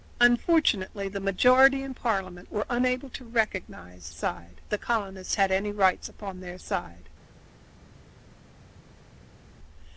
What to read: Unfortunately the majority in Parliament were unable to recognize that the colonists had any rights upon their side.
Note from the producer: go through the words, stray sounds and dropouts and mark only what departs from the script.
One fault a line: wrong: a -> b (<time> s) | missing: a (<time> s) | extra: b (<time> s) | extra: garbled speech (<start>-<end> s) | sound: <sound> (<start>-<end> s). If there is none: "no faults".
wrong: that -> side (4.1 s)